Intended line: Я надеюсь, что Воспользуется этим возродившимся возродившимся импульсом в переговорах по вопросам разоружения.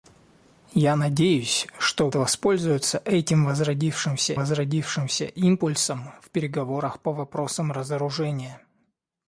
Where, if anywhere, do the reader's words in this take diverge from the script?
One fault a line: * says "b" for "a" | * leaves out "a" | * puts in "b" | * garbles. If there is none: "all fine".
all fine